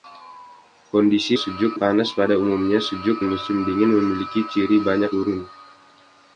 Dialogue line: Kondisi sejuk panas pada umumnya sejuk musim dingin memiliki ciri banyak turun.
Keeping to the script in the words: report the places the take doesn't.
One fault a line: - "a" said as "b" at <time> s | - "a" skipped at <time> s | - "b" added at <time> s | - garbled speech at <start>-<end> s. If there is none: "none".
none